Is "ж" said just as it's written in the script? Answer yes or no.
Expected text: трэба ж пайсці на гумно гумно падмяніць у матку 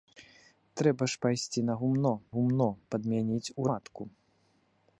yes